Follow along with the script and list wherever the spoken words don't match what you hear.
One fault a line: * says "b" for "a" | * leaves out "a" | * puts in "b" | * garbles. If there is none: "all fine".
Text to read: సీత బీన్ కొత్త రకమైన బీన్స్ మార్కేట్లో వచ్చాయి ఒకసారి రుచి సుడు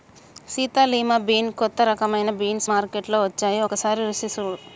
* puts in "లిమా"